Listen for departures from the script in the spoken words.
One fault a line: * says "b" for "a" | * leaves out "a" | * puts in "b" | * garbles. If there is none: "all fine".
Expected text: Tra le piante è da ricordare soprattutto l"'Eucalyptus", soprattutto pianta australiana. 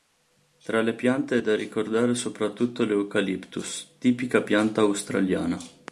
* says "tipica" for "soprattutto"